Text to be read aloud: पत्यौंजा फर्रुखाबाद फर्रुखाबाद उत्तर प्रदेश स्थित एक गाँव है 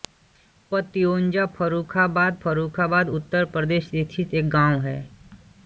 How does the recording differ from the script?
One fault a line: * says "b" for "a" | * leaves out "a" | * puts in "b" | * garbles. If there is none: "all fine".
all fine